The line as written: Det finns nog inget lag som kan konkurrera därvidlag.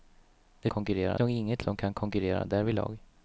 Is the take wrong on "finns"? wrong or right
wrong